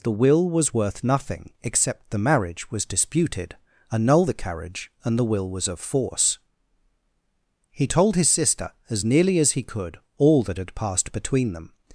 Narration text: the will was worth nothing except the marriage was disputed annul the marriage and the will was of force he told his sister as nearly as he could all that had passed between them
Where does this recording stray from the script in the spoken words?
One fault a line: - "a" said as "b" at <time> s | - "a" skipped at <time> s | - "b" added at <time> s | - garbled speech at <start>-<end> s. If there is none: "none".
- "marriage" said as "carriage" at 4.3 s